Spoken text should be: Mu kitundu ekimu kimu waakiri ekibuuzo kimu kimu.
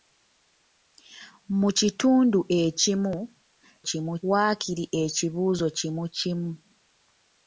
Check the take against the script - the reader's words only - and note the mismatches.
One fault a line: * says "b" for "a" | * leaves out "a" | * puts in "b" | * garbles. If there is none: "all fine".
all fine